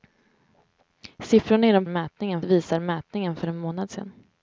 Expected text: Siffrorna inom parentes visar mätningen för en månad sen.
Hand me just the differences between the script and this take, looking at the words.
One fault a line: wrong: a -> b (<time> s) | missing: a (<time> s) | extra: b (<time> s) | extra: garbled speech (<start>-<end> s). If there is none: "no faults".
wrong: parentes -> mätningen (1.9 s)